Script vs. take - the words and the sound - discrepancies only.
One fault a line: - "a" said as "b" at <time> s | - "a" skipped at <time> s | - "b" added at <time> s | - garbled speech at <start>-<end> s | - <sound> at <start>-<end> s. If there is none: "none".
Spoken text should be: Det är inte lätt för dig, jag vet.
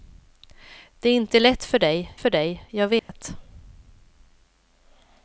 - "för dig" added at 2.1 s
- dropout at 3.0-3.1 s